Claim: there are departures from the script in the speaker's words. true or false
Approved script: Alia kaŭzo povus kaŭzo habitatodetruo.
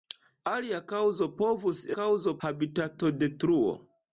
false